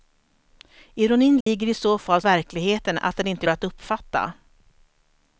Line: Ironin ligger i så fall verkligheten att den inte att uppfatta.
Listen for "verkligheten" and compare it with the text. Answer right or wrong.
right